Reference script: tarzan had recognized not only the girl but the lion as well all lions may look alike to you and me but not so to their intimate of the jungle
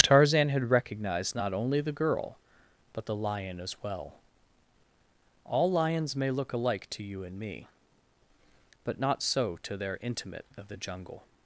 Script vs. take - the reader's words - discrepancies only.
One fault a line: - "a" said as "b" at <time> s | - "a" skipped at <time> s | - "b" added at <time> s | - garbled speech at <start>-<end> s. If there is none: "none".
none